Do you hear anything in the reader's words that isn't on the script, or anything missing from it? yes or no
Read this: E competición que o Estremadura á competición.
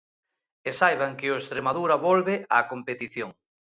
yes